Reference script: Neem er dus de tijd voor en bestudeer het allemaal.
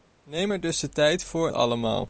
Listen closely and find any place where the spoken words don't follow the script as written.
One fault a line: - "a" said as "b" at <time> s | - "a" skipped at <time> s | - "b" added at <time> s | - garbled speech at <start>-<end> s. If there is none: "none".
- "en bestudeer het" skipped at 1.5 s